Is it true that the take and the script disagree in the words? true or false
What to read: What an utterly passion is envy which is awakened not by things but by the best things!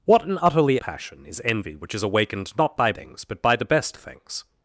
false